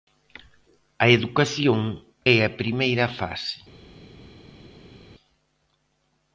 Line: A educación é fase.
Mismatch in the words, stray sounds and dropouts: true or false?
true